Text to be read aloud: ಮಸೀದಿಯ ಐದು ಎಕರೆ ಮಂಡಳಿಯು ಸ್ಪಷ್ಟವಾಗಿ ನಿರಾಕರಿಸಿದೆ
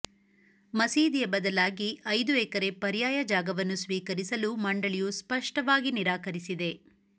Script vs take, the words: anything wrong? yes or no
yes